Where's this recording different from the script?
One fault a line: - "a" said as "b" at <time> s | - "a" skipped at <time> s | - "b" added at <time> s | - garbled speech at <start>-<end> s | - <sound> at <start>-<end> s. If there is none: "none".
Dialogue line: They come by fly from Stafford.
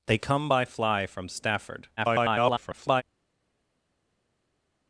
- garbled speech at 2.0-3.0 s